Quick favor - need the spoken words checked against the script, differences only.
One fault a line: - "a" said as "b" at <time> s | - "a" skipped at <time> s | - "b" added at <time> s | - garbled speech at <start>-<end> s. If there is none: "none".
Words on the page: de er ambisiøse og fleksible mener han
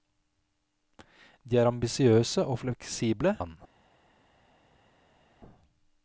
- "mener" skipped at 3.4 s